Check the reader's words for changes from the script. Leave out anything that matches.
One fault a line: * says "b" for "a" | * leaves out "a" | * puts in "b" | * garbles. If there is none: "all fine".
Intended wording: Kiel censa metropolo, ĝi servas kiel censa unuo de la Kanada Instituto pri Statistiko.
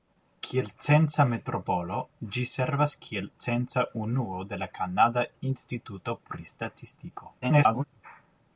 * garbles